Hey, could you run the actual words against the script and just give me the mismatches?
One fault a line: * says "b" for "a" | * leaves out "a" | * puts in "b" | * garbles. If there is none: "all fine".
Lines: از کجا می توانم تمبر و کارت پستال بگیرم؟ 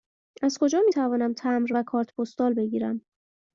all fine